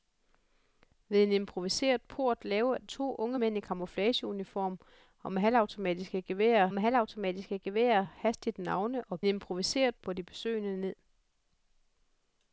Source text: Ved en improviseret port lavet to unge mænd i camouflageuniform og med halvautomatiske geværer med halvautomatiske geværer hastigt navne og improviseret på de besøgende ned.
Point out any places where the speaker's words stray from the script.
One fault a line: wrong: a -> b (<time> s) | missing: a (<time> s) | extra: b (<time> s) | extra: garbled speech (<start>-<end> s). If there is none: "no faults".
no faults